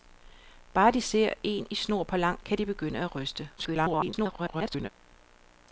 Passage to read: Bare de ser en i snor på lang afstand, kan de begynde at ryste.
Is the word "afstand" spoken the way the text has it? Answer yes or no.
no